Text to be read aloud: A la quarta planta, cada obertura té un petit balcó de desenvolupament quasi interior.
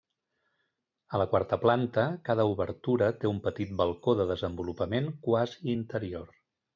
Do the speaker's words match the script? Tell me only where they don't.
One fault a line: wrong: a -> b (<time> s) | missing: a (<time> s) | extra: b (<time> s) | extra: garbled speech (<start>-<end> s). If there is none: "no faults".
no faults